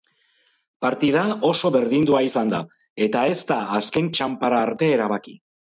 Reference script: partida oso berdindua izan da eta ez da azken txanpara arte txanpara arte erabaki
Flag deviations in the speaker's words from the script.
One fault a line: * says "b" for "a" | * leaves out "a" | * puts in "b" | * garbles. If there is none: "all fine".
* leaves out "txanpara arte"